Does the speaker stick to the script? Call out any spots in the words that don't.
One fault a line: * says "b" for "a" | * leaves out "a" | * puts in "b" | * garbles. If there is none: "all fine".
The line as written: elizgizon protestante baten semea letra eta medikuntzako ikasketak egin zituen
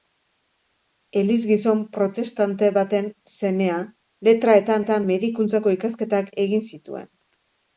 * puts in "eta"